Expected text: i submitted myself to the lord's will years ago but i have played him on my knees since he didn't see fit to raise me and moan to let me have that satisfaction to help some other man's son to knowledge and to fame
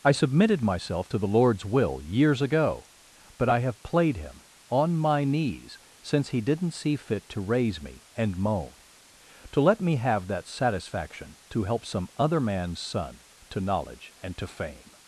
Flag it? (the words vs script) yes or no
no